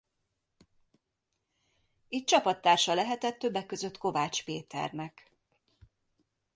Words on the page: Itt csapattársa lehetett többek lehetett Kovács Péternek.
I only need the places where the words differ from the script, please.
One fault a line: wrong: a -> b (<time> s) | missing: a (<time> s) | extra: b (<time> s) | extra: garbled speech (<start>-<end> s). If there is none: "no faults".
wrong: lehetett -> között (3.6 s)